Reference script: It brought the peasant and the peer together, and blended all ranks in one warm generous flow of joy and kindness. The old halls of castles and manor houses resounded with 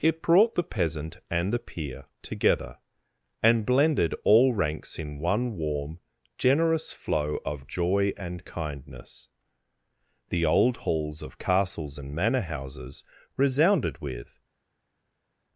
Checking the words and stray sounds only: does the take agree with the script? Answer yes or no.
yes